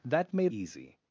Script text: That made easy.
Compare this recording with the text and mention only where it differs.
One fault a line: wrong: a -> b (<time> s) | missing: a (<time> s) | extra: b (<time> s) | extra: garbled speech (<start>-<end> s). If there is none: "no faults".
no faults